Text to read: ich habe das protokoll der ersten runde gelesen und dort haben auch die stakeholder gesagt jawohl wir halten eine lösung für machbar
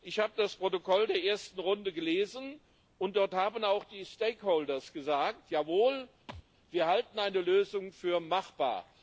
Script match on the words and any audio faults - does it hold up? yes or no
no